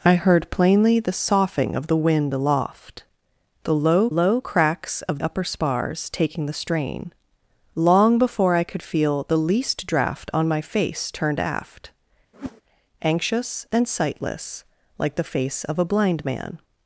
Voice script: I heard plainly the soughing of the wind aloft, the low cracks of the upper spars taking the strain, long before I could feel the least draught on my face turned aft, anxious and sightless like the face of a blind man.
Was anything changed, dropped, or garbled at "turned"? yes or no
no